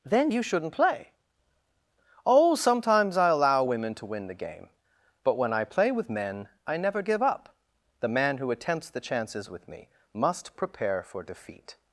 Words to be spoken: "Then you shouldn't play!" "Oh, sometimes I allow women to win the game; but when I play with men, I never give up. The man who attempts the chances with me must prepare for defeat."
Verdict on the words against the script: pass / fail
pass